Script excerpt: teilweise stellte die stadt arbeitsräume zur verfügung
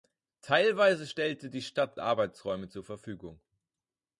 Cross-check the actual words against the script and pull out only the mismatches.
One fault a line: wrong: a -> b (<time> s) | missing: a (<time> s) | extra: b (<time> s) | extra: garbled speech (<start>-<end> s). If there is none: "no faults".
no faults